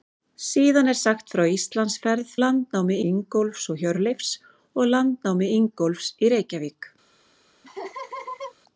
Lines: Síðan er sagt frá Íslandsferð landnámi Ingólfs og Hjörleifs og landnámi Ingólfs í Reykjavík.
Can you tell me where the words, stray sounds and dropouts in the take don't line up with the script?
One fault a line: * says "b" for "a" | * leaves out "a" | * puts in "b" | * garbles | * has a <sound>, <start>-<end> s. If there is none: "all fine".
* has a laugh, 7.6-8.5 s